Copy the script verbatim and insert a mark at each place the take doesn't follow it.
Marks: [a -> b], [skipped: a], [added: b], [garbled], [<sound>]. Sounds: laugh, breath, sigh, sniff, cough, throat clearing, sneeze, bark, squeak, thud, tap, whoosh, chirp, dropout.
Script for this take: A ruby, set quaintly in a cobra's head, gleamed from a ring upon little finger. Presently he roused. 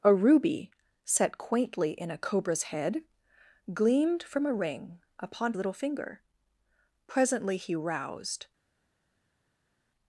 A ruby, set quaintly in a cobra's head, gleamed from a ring upon little finger. Presently he roused.